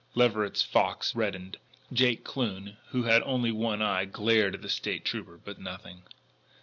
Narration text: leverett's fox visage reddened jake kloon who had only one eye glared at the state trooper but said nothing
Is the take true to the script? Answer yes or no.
no